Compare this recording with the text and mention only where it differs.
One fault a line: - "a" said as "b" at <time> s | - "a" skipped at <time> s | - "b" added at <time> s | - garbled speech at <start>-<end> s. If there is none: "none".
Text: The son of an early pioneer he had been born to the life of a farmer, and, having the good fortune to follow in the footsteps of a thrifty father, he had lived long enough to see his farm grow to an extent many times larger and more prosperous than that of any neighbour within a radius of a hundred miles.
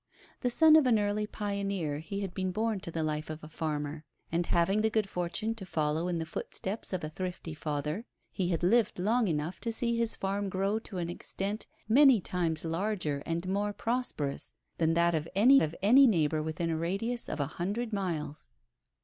- "of any" added at 15.6 s